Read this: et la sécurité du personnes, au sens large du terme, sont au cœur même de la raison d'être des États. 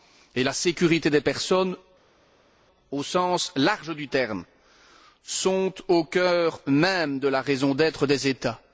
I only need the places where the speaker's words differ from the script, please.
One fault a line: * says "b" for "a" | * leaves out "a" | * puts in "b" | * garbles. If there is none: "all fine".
* says "des" for "du"